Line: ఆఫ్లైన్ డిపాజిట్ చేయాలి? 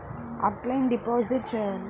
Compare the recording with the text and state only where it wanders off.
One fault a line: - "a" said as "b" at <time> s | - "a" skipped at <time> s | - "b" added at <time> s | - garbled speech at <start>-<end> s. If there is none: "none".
none